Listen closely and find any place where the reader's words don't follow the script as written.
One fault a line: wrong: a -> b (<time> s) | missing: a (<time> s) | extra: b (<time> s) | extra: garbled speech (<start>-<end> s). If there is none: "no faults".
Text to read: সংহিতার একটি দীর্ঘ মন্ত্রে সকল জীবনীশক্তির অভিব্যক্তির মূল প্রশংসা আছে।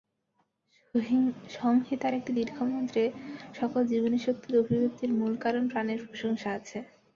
extra: কারণ প্রাণের (5.4 s)